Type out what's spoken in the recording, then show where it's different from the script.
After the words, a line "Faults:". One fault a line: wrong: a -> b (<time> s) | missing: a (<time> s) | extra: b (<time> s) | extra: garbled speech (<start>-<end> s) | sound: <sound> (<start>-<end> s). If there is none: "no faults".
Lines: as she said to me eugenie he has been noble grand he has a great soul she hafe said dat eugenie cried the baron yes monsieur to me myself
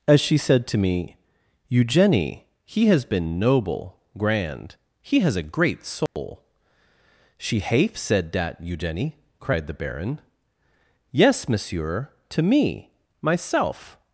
as she said to me eugenie he has been noble grand he has a great soul she hafe said dat eugenie cried the baron yes monsieur to me myself
Faults:
sound: dropout (6.1-6.2 s)